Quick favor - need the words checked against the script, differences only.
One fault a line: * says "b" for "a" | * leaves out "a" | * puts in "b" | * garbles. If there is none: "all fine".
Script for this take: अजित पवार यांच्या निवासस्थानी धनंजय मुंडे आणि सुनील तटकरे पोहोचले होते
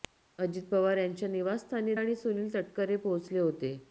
* leaves out "धनंजय मुंडे"